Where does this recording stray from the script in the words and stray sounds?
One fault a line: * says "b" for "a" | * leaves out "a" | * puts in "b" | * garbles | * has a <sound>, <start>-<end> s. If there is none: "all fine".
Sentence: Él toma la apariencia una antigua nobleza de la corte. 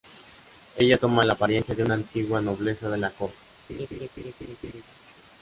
* says "Ella" for "Él"
* puts in "de"
* has a laugh, 3.7-4.8 s